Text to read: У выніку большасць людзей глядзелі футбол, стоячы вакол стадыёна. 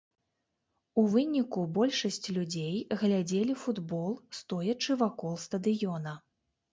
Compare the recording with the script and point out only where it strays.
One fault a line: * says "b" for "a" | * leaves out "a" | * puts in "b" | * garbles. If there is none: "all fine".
all fine